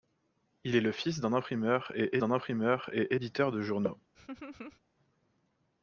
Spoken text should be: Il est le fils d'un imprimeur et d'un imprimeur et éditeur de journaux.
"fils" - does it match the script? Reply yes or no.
yes